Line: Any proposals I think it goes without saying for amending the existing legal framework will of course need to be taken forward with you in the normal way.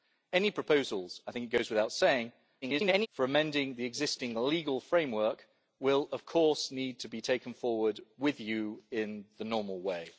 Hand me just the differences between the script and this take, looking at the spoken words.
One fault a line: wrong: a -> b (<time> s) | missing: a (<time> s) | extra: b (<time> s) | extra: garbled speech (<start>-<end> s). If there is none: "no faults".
extra: garbled speech (2.6-3.1 s)